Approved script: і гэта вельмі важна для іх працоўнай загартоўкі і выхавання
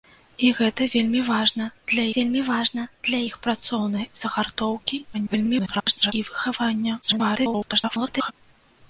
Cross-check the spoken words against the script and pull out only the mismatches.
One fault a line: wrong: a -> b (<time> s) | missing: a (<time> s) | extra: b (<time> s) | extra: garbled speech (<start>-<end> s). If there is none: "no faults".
extra: вельмі важна для (2.1 s)
extra: garbled speech (5.1-6.1 s)
extra: garbled speech (7.0-8.3 s)